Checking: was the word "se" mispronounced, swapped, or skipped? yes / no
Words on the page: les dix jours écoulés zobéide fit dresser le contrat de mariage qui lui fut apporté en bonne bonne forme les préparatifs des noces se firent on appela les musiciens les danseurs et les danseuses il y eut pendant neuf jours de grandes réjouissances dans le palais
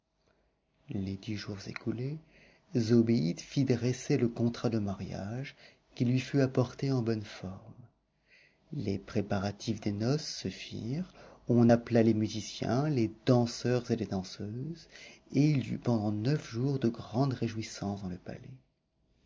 no